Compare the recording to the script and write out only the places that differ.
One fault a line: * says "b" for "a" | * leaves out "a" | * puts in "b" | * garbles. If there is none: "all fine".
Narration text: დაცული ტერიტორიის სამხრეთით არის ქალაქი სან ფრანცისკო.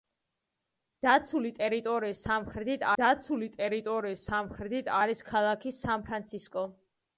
* puts in "დაცული ტერიტორიის სამხრეთით"